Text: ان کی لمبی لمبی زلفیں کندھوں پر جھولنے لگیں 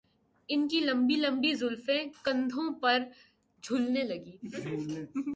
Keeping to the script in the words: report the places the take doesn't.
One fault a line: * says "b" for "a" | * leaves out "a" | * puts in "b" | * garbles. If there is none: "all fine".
all fine